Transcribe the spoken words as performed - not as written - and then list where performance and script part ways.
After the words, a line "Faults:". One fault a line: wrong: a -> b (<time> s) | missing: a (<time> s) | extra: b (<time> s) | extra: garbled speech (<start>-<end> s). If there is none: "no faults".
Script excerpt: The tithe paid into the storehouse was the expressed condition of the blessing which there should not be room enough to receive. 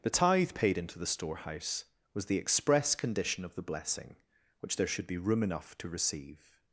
The tithe paid into the storehouse was the express condition of the blessing which there should be room enough to receive.
Faults:
wrong: expressed -> express (2.4 s)
missing: not (5.1 s)